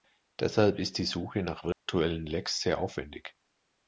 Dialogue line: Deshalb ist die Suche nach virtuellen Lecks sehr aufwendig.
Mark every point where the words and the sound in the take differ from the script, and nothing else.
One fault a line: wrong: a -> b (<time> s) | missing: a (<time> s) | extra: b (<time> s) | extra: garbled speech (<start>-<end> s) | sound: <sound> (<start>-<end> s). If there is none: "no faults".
sound: dropout (1.7-1.9 s)